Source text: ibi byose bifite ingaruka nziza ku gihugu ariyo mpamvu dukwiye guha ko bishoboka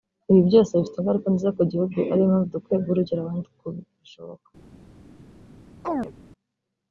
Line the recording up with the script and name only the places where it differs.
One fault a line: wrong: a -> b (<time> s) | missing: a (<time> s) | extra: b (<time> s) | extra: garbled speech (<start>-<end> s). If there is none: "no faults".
extra: urugero abandi (2.9 s)